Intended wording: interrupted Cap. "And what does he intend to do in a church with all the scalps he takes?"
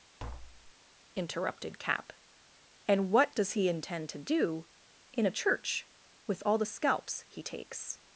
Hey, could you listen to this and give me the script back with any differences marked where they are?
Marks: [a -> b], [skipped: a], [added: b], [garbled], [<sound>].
[tap] interrupted Cap. "And what does he intend to do in a church with all the scalps he takes?"